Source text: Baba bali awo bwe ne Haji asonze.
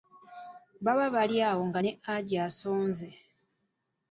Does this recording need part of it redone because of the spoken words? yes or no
yes